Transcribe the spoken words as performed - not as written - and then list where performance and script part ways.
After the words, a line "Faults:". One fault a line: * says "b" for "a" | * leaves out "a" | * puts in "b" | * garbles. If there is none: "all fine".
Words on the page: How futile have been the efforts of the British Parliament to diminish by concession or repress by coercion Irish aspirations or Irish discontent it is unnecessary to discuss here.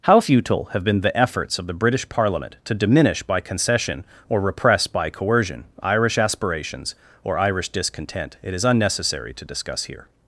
How futile have been the efforts of the British Parliament to diminish by concession or repress by coercion Irish aspirations or Irish discontent it is unnecessary to discuss here.
Faults:
all fine